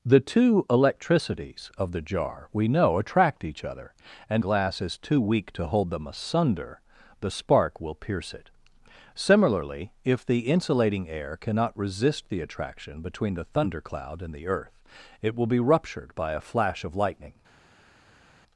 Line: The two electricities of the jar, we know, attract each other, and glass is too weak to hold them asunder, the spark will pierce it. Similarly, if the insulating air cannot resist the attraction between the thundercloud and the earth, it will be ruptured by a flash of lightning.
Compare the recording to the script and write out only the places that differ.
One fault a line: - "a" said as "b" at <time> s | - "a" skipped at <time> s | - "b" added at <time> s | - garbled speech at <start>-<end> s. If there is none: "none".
none